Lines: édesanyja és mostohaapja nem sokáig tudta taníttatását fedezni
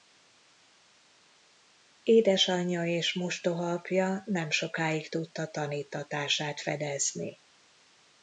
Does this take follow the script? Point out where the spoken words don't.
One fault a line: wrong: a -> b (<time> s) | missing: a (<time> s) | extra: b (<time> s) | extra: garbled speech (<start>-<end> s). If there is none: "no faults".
no faults